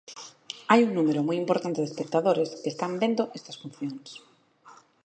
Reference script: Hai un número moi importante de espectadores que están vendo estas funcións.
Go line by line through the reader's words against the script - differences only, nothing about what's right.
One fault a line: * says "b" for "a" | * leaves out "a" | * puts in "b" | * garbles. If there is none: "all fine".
all fine